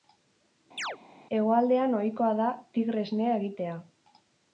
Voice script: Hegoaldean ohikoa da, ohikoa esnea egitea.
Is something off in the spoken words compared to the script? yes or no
yes